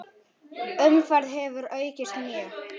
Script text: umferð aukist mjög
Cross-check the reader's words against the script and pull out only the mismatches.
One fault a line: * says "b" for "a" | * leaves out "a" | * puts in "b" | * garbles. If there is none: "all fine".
* puts in "hefur"